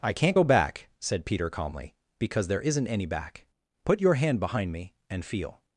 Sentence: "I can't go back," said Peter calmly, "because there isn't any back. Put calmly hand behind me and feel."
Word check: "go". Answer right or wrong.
right